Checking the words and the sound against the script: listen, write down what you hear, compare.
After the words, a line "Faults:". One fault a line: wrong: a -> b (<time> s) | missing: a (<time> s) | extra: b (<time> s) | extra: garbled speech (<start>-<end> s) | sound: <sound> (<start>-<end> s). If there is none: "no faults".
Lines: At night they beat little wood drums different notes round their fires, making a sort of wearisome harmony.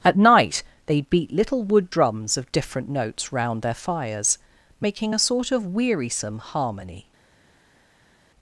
At night they beat little wood drums of different notes round their fires, making a sort of wearisome harmony.
Faults:
extra: of (2.4 s)